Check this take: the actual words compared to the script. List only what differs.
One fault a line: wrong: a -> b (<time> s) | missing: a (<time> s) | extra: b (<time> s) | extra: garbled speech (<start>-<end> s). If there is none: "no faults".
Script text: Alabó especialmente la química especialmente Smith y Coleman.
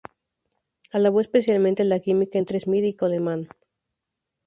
wrong: especialmente -> entre (2.4 s)